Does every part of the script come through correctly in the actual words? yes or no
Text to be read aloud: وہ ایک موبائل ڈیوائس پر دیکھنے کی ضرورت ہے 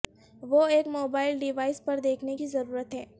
yes